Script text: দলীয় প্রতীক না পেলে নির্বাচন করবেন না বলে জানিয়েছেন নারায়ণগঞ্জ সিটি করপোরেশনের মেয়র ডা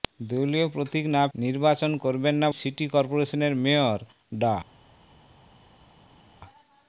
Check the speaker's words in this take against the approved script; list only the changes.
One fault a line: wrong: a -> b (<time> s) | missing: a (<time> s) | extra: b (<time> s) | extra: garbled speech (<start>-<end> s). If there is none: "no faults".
missing: পেলে (1.2 s)
missing: বলে জানিয়েছেন নারায়ণগঞ্জ (2.5 s)